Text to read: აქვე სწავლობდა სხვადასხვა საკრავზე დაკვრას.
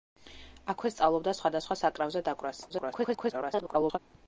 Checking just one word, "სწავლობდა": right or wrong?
right